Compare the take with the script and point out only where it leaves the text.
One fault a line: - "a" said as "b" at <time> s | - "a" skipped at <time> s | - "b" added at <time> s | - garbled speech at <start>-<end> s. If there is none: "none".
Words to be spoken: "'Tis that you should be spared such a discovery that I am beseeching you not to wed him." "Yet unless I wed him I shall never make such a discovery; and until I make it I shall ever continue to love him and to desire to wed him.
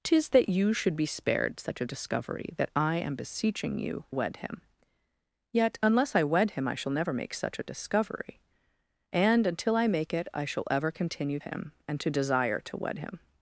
- "not to" skipped at 4.0 s
- "to love" skipped at 11.4 s